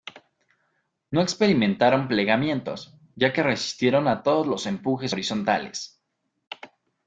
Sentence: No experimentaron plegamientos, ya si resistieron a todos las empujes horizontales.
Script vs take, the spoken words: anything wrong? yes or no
yes